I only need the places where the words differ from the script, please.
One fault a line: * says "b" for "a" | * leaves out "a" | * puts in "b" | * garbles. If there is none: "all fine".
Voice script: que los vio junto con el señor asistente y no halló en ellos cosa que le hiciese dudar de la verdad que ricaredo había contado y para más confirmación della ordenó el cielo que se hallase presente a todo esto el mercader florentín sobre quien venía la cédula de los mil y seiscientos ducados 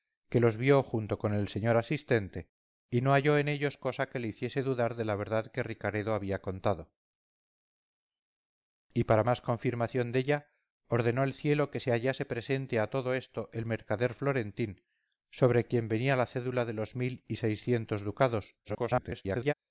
* garbles